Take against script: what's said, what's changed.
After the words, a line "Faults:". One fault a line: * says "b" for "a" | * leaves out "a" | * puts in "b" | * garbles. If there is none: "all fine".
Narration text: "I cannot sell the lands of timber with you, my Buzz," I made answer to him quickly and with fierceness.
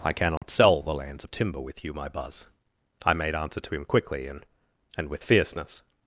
"I cannot sell the lands of timber with you, my Buzz," I made answer to him quickly and and with fierceness.
Faults:
* puts in "and"